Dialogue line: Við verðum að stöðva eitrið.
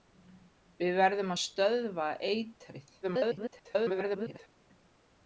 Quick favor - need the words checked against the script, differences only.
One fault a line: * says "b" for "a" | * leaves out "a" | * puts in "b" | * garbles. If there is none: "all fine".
* garbles